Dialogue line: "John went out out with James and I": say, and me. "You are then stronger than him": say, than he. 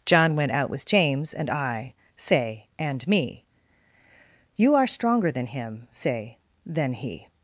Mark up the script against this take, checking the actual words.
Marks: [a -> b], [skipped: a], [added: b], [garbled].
"John went out [skipped: out] with James and I": say, and me. "You are [skipped: then] stronger than him": say, than he.